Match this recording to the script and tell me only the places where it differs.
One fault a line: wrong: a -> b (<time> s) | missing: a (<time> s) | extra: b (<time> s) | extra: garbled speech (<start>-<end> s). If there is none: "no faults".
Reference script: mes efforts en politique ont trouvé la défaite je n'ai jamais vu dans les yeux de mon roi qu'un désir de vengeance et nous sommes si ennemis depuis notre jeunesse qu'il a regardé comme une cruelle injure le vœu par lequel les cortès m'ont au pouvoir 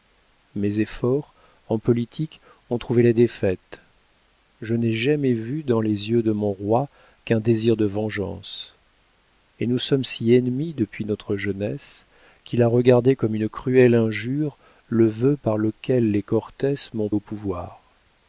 no faults